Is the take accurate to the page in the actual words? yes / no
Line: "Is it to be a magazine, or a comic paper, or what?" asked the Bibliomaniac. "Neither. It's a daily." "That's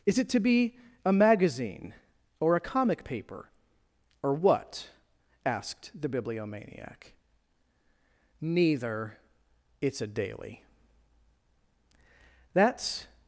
yes